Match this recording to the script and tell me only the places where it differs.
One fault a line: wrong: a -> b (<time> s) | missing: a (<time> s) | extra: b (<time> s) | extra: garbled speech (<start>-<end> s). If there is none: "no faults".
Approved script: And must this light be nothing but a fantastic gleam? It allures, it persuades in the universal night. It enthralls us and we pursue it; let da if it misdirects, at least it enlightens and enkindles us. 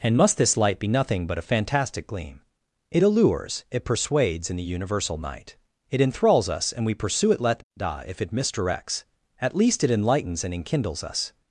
no faults